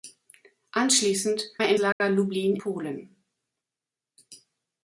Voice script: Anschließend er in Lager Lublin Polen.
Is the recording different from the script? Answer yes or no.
no